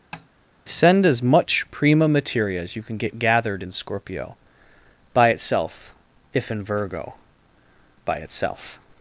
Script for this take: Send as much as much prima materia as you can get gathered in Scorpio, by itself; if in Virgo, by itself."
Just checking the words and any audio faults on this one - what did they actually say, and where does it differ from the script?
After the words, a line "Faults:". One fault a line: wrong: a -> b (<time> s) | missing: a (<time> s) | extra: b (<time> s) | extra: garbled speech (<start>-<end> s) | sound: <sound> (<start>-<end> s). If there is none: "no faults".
Send as much prima materia as you can get gathered in Scorpio, by itself; if in Virgo, by itself."
Faults:
sound: tap (0.1-0.3 s)
missing: as much (1.6 s)